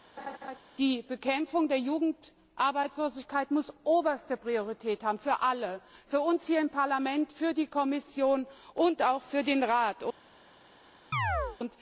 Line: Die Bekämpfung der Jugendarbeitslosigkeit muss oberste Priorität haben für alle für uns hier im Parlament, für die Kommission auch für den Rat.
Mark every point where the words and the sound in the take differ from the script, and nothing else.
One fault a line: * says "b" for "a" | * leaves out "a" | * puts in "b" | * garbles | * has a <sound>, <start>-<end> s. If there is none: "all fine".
* has a laugh, 0.2-0.6 s
* puts in "und"
* has a chirp, 11.1-11.6 s